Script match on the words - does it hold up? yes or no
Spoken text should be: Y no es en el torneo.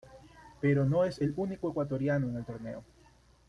no